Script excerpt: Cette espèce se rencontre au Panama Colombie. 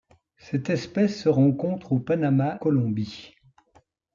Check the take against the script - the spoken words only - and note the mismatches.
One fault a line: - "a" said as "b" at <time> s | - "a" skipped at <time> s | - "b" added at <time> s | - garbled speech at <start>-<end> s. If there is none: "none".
none